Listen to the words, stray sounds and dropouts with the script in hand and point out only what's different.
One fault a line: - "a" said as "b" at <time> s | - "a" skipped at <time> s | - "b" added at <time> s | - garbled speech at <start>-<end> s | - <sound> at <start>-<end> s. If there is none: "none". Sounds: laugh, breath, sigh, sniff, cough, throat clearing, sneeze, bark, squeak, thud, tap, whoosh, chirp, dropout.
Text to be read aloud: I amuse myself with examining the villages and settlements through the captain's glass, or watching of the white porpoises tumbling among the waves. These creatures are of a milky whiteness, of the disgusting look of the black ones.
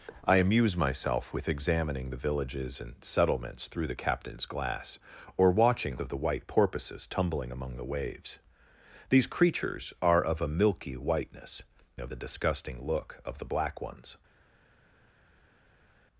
none